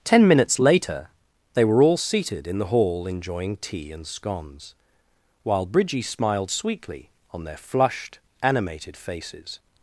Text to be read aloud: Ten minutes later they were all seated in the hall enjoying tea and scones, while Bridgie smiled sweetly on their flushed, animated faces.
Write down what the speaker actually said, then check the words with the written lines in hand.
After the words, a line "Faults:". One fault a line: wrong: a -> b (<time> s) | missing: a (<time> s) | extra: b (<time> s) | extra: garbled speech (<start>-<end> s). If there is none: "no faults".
Ten minutes later they were all seated in the hall enjoying tea and scones, while Bridgie smiled sweetly on their flushed, animated faces.
Faults:
no faults